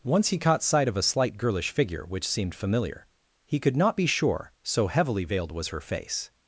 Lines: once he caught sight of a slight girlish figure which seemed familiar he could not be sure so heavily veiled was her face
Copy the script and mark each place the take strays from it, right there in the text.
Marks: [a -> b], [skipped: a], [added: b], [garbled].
once he caught sight of a slight girlish figure which seemed familiar he could not be sure so heavily veiled was her face